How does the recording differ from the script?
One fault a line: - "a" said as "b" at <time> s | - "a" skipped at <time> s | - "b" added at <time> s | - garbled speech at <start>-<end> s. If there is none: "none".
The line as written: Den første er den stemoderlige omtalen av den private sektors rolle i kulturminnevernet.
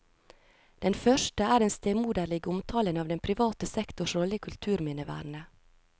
none